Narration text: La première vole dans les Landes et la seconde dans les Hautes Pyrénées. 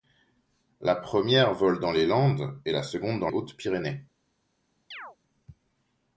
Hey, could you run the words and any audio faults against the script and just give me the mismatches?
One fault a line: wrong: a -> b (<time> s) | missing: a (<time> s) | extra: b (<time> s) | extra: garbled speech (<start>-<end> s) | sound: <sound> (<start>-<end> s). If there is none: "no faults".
missing: les (3.3 s)
sound: chirp (4.9-5.2 s)